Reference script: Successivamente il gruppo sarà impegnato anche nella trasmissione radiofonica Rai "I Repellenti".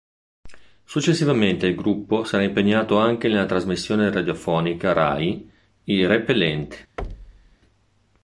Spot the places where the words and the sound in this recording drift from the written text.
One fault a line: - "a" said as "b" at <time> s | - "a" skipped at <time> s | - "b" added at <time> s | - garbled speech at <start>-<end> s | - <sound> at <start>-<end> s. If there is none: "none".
- thud at 7.0-7.6 s